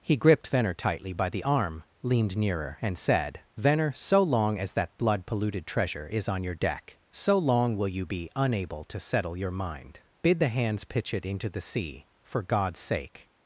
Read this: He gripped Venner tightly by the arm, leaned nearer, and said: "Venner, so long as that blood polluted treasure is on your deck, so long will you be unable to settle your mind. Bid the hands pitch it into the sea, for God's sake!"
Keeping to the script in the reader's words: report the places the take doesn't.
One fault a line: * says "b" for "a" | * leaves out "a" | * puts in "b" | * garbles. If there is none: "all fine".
all fine